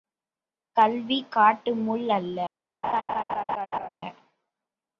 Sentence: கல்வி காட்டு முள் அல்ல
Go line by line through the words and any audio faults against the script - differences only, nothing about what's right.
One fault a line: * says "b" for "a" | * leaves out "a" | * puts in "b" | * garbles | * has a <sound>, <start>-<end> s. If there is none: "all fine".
* has a laugh, 2.8-3.9 s